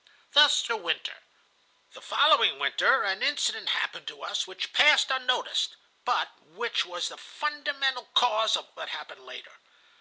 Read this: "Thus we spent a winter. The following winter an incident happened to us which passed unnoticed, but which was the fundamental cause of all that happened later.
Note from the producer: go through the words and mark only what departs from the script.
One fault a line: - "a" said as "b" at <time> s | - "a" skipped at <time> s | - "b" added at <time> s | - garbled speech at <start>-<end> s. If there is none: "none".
- "we spent" skipped at 0.7 s
- "all" skipped at 8.7 s